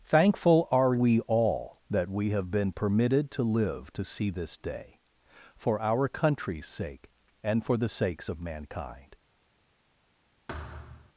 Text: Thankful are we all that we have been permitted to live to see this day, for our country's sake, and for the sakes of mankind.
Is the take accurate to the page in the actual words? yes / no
yes